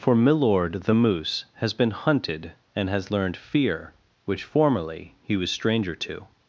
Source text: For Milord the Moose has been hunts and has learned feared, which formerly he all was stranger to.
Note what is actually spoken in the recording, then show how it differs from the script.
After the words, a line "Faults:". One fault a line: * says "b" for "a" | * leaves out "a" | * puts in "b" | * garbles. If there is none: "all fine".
For Milord the Moose has been hunted and has learned fear, which formerly he was stranger to.
Faults:
* says "hunted" for "hunts"
* says "fear" for "feared"
* leaves out "all"